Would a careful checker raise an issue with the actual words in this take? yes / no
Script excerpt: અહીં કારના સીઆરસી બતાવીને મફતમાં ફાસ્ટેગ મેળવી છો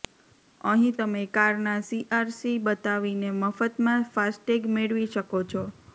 yes